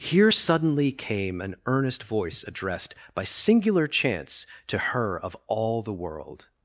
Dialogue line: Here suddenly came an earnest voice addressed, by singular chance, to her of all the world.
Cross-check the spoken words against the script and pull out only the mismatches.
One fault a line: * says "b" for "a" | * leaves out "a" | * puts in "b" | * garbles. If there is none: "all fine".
all fine